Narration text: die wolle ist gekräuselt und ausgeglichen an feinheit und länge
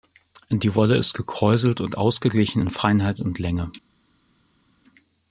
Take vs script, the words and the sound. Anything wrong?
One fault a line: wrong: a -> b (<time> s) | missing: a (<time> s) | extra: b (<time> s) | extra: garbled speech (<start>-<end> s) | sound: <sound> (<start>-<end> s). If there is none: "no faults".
wrong: an -> in (2.6 s)